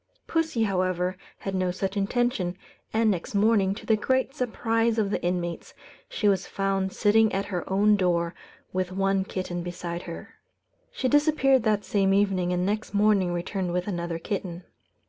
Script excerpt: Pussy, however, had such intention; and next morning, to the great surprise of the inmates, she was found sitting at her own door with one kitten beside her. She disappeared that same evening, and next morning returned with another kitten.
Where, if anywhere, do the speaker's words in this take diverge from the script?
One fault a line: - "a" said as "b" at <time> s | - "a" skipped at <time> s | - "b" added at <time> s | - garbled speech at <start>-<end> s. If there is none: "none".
- "no" added at 1.5 s